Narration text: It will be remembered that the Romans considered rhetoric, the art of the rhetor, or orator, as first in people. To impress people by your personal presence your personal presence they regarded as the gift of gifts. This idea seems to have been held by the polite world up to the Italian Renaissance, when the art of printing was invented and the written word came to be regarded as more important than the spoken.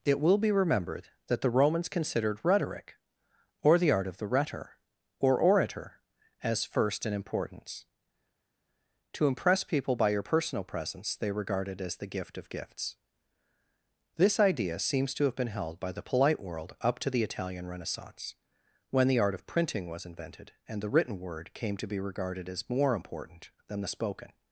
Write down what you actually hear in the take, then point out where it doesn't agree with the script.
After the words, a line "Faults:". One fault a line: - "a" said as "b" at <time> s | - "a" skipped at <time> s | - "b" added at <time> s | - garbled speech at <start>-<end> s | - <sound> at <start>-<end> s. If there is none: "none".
It will be remembered that the Romans considered rhetoric, or the art of the rhetor, or orator, as first in importance. To impress people by your personal presence they regarded as the gift of gifts. This idea seems to have been held by the polite world up to the Italian Renaissance, when the art of printing was invented and the written word came to be regarded as more important than the spoken.
Faults:
- "or" added at 3.6 s
- "people" said as "importance" at 7.1 s
- "your personal presence" skipped at 11.2 s